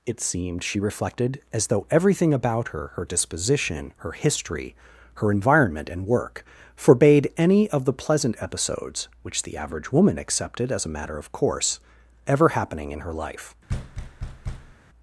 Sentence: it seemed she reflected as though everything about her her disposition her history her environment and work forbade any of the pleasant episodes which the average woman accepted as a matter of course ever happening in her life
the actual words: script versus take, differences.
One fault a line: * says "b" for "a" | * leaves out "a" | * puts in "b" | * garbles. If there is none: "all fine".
all fine